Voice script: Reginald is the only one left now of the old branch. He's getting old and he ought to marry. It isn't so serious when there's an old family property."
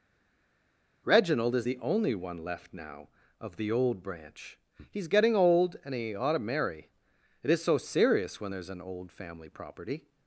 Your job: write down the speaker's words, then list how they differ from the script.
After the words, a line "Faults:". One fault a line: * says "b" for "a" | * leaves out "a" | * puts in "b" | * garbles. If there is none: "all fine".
Reginald is the only one left now of the old branch. He's getting old and he ought to marry. It is so serious when there's an old family property."
Faults:
* says "is" for "isn't"